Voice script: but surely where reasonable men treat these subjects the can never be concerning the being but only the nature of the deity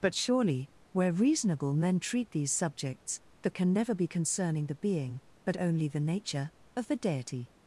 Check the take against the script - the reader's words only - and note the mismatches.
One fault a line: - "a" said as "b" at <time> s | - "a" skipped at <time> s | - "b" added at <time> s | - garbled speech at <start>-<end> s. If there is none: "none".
none